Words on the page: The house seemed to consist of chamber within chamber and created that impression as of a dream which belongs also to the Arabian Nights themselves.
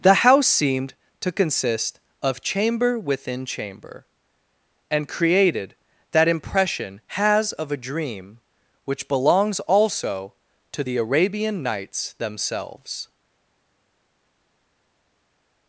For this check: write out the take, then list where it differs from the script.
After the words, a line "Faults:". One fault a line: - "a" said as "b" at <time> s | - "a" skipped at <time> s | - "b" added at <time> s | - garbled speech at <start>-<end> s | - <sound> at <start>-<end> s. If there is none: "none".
The house seemed to consist of chamber within chamber and created that impression has of a dream which belongs also to the Arabian Nights themselves.
Faults:
- "as" said as "has" at 7.1 s